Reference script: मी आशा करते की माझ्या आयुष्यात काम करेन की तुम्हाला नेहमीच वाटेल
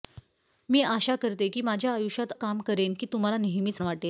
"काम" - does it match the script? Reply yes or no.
yes